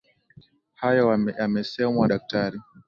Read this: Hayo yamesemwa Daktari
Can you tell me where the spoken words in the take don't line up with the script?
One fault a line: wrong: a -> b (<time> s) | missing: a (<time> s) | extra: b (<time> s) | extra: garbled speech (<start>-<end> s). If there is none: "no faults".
no faults